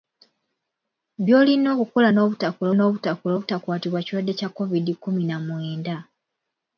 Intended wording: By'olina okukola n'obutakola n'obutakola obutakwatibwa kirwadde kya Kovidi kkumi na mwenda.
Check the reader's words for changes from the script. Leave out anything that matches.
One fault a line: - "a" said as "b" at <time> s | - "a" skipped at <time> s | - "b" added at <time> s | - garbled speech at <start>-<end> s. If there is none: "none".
none